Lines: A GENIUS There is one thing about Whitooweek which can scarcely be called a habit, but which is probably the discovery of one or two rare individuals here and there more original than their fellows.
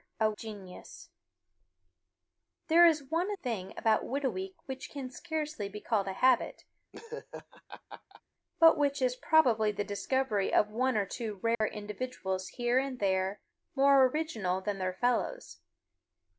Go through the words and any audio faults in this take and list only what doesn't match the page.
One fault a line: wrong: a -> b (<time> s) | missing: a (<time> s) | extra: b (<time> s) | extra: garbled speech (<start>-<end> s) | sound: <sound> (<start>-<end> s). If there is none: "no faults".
sound: laugh (6.9-8.2 s)
sound: dropout (11.5-11.6 s)